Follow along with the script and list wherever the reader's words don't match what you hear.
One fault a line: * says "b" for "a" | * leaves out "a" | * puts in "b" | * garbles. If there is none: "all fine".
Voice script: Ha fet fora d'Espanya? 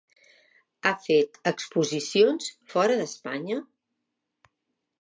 * puts in "exposicions"